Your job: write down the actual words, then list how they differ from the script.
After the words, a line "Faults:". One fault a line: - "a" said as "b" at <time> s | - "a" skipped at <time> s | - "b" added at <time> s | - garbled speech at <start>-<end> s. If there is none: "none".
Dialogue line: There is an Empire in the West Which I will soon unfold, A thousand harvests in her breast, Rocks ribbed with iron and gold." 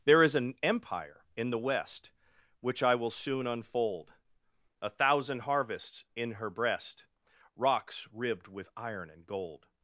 There is an Empire in the West Which I will soon unfold, A thousand harvests in her breast, Rocks ribbed with iron and gold."
Faults:
none